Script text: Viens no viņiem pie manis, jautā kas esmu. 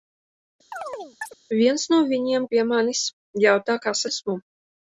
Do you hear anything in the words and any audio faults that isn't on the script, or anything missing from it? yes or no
yes